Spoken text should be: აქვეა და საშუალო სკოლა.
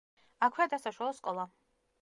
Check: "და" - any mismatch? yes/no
no